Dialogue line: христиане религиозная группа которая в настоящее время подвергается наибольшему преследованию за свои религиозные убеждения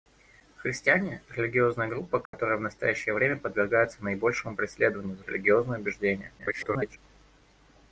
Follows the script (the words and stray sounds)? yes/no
no